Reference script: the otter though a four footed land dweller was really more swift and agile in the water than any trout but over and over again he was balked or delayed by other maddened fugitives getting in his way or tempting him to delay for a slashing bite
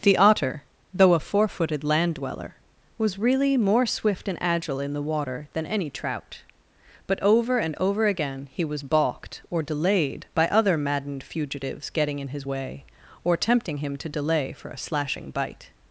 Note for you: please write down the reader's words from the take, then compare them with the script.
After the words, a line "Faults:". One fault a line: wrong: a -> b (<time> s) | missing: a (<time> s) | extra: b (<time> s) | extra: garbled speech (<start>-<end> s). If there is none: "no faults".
the otter though a four footed land dweller was really more swift and agile in the water than any trout but over and over again he was balked or delayed by other maddened fugitives getting in his way or tempting him to delay for a slashing bite
Faults:
no faults